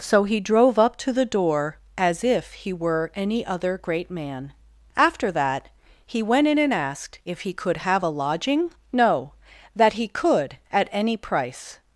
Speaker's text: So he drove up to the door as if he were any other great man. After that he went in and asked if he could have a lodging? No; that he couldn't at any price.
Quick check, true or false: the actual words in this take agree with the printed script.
false